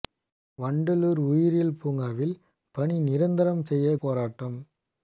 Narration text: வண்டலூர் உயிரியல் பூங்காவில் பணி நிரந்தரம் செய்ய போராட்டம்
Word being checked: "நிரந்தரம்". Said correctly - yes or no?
yes